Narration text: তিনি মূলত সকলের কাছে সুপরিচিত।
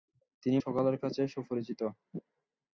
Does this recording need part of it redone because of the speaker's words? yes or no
yes